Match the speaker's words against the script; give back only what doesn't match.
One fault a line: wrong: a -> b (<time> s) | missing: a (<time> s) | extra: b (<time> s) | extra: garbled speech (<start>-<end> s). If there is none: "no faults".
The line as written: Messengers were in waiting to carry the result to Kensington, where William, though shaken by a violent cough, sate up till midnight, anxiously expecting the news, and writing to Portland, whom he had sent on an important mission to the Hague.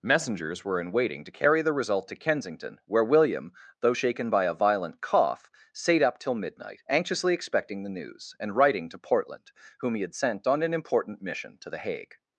no faults